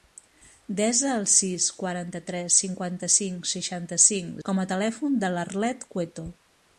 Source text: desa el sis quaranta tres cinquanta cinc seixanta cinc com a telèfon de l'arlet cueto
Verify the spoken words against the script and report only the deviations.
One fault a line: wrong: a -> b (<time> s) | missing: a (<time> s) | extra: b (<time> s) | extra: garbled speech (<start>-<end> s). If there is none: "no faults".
no faults